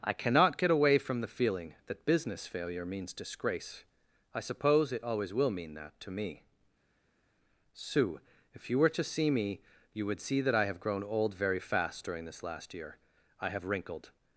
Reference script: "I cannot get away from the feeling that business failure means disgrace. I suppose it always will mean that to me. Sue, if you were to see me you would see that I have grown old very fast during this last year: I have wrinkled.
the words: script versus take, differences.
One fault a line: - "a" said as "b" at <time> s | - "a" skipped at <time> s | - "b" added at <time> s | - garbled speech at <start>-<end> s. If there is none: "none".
none